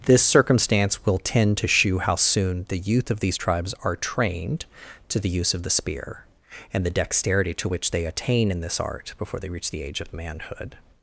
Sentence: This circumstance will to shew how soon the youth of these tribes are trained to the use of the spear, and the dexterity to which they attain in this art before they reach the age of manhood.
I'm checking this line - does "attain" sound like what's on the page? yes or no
yes